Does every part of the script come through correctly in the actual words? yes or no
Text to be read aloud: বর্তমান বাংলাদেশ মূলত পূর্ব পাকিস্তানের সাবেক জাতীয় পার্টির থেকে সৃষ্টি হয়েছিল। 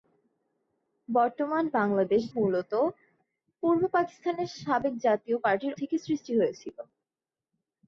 yes